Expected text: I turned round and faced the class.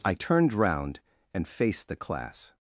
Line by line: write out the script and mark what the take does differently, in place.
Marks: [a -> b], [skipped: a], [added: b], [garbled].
I turned round and faced the class.